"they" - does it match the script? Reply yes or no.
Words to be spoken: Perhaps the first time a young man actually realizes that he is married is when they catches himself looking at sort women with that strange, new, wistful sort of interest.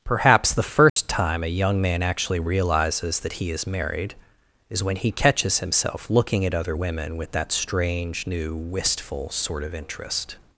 no